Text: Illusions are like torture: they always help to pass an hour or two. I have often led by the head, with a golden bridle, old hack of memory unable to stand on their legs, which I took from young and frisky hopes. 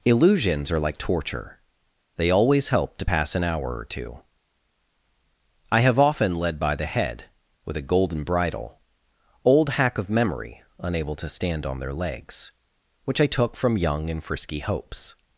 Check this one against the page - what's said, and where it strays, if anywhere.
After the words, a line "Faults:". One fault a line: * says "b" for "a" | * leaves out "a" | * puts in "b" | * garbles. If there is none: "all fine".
Illusions are like torture: they always help to pass an hour or two. I have often led by the head, with a golden bridle, old hack of memory unable to stand on their legs, which I took from young and frisky hopes.
Faults:
all fine